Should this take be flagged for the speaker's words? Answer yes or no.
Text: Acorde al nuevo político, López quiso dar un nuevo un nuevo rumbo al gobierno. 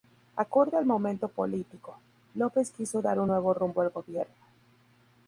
yes